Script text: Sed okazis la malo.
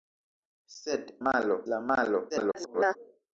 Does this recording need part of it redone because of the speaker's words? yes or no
yes